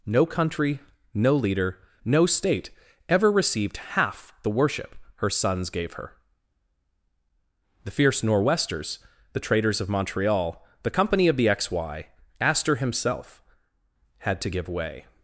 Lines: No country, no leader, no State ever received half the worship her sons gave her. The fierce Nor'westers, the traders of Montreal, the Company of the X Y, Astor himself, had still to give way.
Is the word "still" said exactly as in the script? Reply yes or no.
no